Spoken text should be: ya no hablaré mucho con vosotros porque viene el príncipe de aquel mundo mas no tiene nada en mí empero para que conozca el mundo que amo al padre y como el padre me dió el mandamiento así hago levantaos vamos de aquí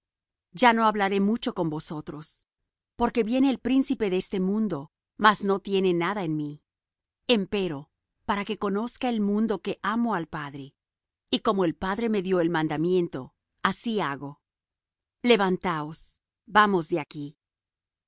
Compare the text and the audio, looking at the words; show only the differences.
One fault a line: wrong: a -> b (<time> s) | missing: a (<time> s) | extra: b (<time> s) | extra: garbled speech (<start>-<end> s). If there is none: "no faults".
wrong: aquel -> este (4.2 s)